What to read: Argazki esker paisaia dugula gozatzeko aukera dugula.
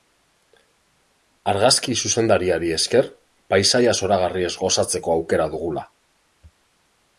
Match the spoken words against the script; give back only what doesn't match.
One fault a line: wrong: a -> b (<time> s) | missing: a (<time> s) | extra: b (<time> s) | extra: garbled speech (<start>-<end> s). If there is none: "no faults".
extra: zuzendariari (2.0 s)
wrong: dugula -> zoragarriez (4.0 s)